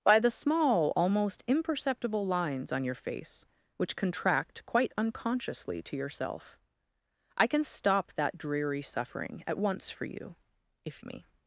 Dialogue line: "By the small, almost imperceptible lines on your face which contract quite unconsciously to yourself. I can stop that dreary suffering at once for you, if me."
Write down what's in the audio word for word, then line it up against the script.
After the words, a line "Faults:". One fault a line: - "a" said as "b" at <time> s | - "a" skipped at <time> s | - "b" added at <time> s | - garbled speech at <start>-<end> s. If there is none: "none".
"By the small, almost imperceptible lines on your face which contract quite unconsciously to yourself. I can stop that dreary suffering at once for you, if me."
Faults:
none